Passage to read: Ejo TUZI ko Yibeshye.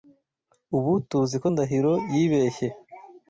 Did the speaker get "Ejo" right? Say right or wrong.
wrong